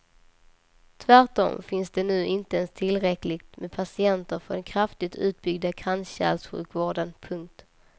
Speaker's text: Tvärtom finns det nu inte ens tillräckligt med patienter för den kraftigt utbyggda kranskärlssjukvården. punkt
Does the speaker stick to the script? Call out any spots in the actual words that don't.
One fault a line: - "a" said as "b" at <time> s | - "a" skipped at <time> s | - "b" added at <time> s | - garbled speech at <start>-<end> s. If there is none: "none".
none